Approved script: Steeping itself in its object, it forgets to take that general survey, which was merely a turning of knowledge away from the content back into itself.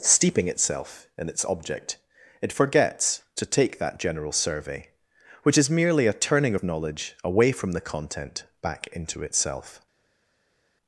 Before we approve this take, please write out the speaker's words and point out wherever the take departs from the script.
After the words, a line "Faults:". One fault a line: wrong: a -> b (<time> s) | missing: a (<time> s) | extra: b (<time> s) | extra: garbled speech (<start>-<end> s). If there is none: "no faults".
Steeping itself in its object, it forgets to take that general survey, which is merely a turning of knowledge away from the content back into itself.
Faults:
wrong: was -> is (5.6 s)